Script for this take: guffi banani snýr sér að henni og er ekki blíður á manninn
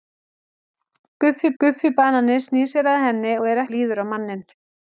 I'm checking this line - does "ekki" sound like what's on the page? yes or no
no